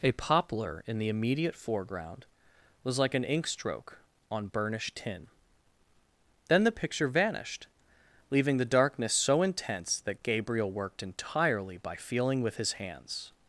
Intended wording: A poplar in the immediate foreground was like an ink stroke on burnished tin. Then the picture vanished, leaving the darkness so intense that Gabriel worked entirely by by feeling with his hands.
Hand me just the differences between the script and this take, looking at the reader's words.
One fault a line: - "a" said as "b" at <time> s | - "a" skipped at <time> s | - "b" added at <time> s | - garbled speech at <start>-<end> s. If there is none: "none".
- "by" skipped at 12.0 s